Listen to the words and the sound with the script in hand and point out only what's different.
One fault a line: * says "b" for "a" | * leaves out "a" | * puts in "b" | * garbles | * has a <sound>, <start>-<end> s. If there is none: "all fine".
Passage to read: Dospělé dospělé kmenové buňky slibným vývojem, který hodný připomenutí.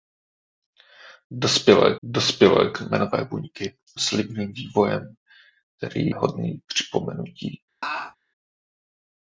* has a laugh, 7.8-8.2 s